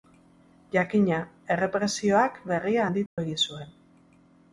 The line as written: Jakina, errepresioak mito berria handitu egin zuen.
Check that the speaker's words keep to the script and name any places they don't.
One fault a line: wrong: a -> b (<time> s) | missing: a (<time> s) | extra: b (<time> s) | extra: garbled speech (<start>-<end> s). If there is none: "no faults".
missing: mito (2.4 s)